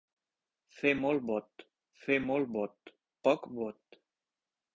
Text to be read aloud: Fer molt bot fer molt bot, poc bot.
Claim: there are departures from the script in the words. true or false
false